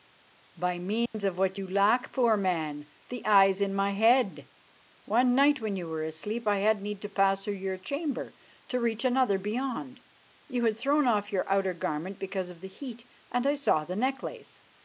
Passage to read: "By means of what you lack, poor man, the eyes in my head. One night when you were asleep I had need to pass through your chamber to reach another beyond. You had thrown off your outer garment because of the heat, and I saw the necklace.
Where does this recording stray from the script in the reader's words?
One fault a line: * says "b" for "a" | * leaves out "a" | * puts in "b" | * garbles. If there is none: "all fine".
all fine